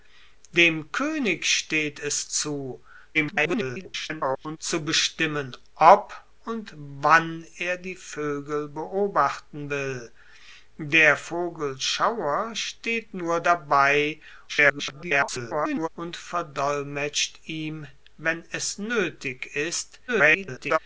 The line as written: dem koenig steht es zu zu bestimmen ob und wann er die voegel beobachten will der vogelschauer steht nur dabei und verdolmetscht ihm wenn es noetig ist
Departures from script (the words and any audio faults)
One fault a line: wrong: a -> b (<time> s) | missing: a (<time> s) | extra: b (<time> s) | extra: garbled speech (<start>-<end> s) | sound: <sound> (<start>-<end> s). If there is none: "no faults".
extra: garbled speech (3.1-4.6 s)
extra: garbled speech (14.5-15.9 s)
extra: garbled speech (20.1-20.8 s)